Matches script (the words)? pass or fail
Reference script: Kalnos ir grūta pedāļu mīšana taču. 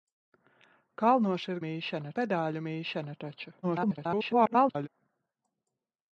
fail